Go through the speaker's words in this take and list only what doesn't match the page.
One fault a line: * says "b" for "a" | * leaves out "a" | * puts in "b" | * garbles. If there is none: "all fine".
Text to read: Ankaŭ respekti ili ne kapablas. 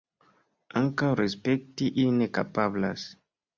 all fine